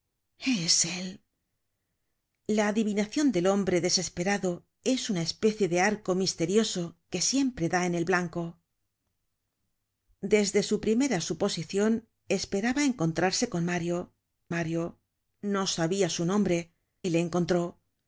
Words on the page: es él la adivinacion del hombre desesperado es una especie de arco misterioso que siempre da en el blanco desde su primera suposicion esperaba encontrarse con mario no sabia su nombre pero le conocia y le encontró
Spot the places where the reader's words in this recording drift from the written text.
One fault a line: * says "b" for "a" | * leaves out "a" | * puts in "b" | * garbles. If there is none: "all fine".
* puts in "mario"
* leaves out "pero le conocia"